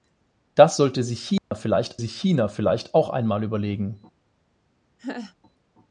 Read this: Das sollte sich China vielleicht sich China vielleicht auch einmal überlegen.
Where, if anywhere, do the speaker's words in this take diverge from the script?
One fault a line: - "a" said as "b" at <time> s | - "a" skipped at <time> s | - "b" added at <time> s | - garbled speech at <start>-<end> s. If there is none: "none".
none